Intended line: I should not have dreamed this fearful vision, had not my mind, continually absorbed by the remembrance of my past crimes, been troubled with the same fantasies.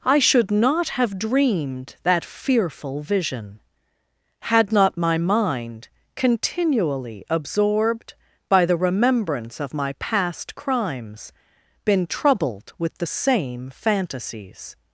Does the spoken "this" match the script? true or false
false